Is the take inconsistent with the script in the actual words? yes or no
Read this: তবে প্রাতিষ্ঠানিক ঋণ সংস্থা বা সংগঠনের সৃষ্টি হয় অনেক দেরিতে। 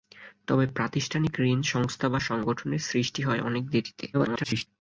yes